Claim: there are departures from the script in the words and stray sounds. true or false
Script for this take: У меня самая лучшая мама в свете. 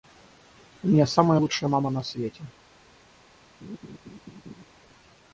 true